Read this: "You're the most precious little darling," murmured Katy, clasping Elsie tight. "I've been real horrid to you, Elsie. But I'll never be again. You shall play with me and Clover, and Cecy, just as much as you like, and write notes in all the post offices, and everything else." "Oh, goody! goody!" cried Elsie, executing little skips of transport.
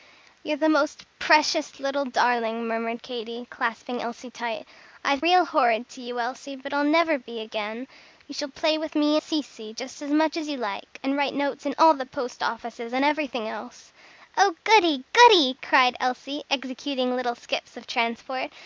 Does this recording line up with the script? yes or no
no